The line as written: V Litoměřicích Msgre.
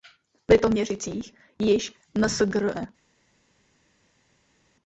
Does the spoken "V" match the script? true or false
true